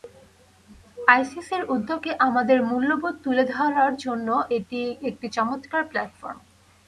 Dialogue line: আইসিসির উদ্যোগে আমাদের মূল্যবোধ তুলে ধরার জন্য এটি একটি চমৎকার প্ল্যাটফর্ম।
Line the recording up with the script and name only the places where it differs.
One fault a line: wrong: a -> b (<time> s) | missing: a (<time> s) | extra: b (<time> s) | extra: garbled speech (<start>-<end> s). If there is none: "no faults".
no faults